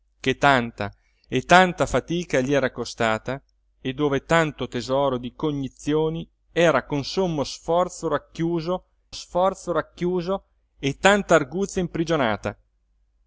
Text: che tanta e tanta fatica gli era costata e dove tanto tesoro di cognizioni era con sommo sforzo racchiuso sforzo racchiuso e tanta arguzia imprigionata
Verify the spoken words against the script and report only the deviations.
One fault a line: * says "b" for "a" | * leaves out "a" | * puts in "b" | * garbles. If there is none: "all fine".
all fine